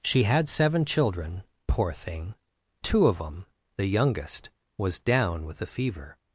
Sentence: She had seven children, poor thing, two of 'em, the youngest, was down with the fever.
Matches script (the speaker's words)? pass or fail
pass